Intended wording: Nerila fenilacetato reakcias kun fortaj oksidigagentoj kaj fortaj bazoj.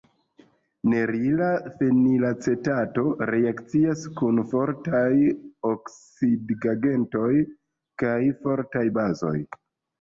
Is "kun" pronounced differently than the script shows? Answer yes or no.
no